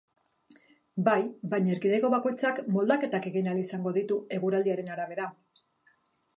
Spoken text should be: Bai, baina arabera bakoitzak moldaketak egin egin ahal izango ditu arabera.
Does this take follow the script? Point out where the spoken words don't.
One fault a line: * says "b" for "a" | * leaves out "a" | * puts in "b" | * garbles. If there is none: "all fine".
* says "erkidego" for "arabera"
* leaves out "egin"
* puts in "eguraldiaren"